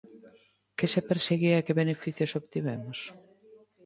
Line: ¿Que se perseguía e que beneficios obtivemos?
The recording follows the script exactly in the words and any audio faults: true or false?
true